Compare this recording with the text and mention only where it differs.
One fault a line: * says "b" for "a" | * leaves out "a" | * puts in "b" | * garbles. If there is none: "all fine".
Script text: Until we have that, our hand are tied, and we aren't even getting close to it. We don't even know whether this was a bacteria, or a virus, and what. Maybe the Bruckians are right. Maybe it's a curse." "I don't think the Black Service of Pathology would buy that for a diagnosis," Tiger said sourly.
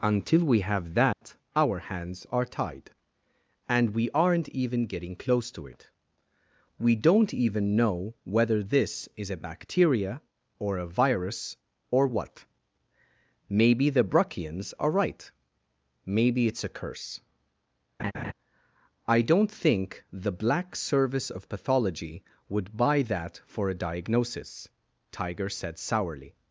* says "hands" for "hand"
* says "is" for "was"
* says "or" for "and"